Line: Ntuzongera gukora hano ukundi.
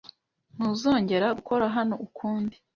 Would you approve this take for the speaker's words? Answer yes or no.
yes